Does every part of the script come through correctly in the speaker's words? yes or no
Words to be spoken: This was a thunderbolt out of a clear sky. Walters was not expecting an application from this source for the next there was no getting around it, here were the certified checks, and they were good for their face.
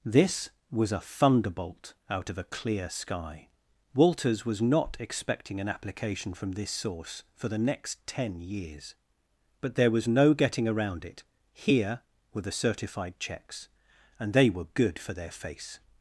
no